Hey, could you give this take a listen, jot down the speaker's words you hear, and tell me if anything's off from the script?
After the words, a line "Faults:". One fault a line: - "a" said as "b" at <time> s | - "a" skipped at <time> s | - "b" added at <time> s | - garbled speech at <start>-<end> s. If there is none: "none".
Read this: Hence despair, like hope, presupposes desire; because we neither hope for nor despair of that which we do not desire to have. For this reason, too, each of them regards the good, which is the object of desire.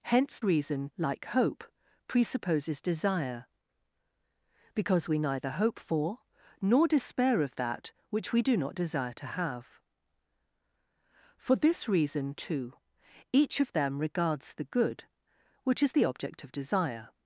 Hence reason, like hope, presupposes desire; because we neither hope for nor despair of that which we do not desire to have. For this reason, too, each of them regards the good, which is the object of desire.
Faults:
- "despair" said as "reason" at 0.4 s